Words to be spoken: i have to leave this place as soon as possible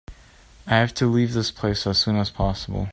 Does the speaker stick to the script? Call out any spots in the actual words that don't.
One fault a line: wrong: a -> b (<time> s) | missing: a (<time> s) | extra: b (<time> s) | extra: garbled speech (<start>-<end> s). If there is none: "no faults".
no faults